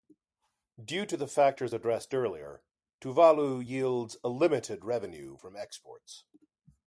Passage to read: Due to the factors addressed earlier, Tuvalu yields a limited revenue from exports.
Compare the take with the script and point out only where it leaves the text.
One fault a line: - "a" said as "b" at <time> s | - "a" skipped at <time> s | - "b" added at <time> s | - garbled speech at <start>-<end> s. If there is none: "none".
none